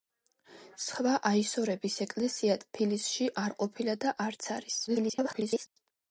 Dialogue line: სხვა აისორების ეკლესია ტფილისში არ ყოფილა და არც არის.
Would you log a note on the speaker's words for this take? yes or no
yes